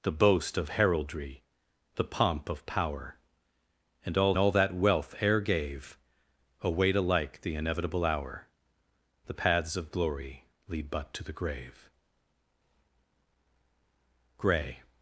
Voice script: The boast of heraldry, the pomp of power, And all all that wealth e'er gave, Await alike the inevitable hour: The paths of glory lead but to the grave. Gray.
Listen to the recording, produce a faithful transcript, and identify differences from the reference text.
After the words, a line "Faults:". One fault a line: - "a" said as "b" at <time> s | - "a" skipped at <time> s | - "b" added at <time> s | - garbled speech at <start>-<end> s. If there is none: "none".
The boast of heraldry, the pomp of power, And all all that wealth e'er gave, Await alike the inevitable hour: The paths of glory lead but to the grave. Gray.
Faults:
none